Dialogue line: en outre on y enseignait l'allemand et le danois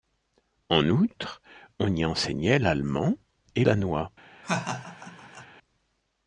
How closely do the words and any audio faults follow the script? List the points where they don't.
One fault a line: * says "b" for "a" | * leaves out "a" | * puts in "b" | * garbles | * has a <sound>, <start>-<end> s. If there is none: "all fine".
* leaves out "le"
* has a laugh, 4.4-5.5 s